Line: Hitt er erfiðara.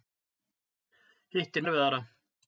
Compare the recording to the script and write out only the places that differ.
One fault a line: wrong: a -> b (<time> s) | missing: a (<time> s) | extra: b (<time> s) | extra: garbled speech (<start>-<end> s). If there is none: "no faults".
no faults